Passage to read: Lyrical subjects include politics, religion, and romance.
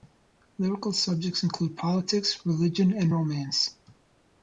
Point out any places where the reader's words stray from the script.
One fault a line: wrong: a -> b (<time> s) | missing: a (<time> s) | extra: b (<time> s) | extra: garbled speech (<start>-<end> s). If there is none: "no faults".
no faults